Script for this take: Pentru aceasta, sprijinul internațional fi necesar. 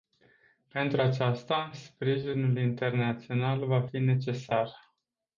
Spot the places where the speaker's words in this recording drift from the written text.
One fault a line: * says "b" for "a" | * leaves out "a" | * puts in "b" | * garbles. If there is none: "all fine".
* puts in "va"